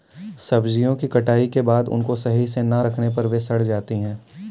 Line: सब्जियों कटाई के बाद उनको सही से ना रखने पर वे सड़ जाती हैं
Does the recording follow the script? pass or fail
fail